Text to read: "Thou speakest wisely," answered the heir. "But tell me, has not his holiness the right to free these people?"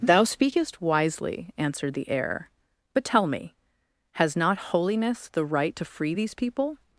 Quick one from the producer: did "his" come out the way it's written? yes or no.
no